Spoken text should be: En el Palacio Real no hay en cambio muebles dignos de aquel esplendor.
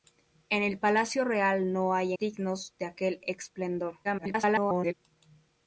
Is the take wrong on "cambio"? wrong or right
wrong